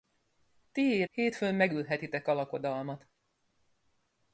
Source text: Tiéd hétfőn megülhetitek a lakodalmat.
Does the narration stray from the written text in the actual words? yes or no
no